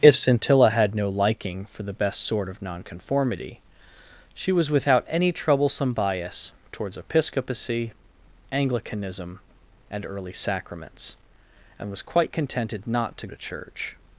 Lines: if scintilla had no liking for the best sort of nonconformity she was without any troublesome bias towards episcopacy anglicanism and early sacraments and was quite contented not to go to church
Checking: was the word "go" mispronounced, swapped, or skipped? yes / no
yes